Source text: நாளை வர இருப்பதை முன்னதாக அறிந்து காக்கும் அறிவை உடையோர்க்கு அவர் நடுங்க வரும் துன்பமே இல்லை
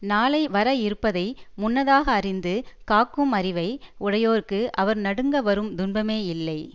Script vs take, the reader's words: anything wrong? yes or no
no